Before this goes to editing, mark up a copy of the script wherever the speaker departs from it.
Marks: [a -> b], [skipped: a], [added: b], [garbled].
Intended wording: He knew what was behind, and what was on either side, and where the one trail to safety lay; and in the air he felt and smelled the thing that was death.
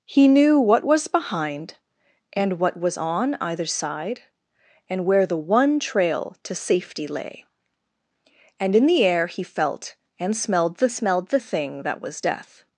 He knew what was behind, and what was on either side, and where the one trail to safety lay; and in the air he felt and smelled the [added: smelled the] thing that was death.